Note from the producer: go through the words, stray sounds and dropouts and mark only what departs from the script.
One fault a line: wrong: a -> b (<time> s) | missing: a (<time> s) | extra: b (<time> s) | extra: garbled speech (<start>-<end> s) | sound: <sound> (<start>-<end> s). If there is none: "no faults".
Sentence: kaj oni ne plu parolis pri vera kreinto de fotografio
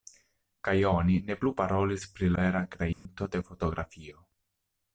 sound: dropout (2.9-3.1 s)